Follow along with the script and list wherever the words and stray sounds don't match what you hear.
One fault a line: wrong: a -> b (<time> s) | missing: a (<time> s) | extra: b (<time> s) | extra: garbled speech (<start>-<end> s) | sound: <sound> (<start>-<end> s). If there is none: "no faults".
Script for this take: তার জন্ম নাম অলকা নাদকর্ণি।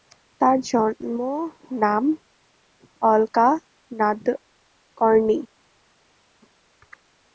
no faults